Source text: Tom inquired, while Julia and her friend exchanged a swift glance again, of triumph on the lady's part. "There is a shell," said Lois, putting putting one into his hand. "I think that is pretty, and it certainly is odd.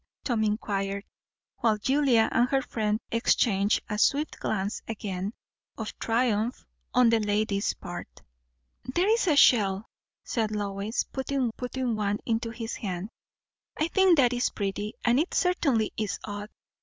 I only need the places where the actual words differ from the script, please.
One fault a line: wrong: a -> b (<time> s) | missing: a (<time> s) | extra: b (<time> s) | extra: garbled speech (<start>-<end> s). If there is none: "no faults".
no faults